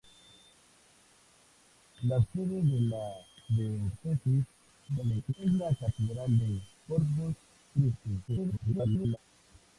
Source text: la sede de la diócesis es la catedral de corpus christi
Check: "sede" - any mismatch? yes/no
no